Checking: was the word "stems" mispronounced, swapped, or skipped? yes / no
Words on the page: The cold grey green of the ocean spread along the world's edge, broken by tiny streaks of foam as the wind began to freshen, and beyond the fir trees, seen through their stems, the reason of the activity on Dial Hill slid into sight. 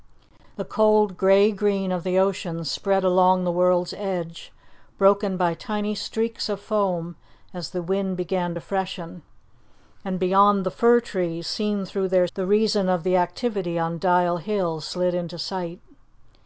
yes